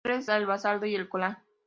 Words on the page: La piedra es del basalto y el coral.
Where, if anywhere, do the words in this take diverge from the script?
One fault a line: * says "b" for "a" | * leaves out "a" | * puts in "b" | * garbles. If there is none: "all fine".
all fine